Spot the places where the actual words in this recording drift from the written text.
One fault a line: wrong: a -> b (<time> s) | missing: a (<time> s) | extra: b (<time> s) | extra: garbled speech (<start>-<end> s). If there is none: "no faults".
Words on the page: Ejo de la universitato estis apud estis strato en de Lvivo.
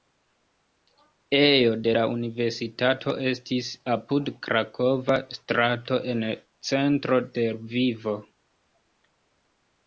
wrong: estis -> krakova (4.5 s)
extra: centro (6.7 s)